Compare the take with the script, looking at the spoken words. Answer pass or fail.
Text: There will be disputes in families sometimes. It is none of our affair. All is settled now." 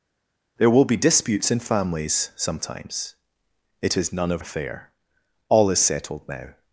fail